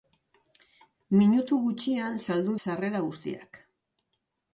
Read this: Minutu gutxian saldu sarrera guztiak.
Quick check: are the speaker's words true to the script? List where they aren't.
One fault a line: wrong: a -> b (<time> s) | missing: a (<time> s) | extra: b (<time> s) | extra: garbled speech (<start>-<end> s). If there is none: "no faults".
no faults